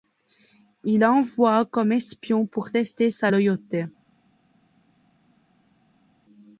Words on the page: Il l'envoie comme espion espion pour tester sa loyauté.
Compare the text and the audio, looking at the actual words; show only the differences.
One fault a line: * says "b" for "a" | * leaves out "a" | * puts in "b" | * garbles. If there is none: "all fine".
* leaves out "espion"